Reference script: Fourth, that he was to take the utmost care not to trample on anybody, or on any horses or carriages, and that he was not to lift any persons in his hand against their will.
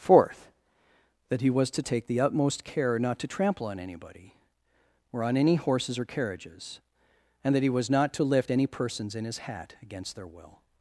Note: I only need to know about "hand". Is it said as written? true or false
false